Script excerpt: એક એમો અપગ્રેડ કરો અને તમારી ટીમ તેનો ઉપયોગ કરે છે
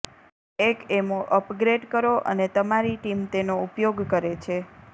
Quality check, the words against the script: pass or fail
pass